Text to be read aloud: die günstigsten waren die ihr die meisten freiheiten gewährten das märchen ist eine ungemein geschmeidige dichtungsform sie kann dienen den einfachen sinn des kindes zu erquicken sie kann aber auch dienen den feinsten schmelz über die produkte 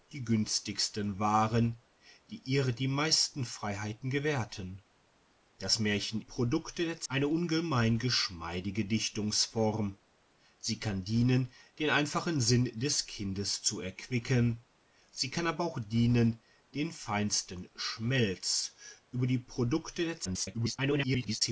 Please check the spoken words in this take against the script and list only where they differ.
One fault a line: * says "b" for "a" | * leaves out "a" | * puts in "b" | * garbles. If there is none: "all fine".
* says "produkte" for "ist"
* garbles